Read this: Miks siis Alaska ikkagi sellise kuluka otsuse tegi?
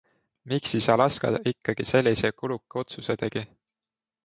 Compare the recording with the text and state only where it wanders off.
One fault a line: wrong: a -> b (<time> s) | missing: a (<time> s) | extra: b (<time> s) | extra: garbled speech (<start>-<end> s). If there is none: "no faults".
no faults